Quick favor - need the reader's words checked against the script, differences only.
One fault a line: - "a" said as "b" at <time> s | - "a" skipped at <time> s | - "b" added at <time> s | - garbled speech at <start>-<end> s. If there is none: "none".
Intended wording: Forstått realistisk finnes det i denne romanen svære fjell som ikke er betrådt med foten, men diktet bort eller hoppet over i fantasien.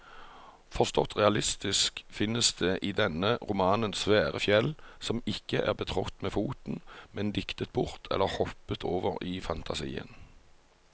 none